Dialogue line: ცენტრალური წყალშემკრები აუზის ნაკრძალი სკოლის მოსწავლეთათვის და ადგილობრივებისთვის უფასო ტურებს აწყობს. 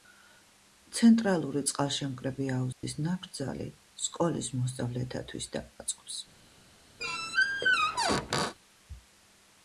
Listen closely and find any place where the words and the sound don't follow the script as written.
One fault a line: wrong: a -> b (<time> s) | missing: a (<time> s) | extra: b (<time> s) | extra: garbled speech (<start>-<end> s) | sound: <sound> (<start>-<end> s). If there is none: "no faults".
sound: dropout (2.7-2.8 s)
missing: ადგილობრივებისთვის უფასო ტურებს (5.6 s)
sound: squeak (7.0-8.5 s)